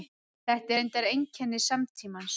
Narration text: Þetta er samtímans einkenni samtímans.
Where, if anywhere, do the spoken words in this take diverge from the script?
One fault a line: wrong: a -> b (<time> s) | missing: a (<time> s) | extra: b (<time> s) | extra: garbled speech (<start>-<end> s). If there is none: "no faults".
wrong: samtímans -> reyndar (0.8 s)